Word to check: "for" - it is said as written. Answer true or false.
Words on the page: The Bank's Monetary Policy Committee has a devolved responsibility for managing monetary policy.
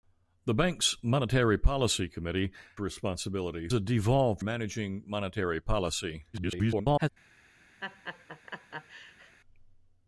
false